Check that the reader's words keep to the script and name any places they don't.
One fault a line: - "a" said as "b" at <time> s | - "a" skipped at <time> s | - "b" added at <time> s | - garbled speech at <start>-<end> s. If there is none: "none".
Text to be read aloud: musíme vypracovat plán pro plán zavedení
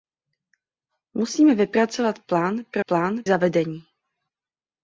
none